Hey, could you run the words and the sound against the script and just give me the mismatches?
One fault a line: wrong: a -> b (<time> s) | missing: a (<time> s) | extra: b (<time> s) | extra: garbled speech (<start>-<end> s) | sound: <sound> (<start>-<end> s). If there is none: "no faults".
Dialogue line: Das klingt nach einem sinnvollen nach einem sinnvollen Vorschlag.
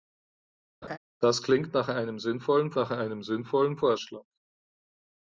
sound: laugh (0.8-1.0 s)